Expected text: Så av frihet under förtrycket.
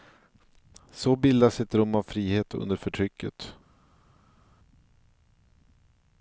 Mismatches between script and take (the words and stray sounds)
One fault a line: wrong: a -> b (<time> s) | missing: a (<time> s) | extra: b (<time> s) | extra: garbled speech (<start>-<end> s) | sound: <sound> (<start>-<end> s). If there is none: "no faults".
extra: bildas ett rum (1.1 s)